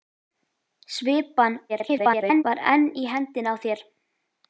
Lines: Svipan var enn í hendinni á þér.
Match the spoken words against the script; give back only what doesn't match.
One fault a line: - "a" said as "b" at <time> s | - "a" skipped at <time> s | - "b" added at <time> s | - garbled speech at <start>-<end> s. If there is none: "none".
- garbled speech at 1.7-2.4 s